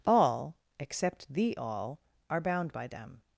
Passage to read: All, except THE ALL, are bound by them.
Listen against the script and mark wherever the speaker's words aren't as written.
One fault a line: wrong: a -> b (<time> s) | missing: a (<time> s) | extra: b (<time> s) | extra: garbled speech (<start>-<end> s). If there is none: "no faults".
no faults